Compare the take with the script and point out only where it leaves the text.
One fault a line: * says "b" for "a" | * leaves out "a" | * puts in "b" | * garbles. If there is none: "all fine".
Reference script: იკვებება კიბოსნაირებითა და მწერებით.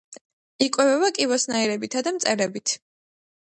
all fine